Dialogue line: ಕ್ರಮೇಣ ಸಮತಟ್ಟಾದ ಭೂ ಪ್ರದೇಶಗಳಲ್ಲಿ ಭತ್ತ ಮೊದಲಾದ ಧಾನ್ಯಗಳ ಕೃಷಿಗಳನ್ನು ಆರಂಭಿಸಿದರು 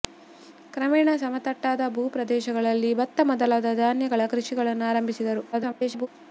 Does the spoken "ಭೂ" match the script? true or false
true